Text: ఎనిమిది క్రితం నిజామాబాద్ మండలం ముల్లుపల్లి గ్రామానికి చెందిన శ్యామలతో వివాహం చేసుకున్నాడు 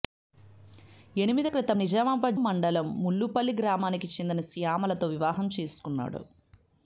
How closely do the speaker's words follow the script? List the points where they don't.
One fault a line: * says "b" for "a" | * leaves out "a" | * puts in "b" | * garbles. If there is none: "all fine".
all fine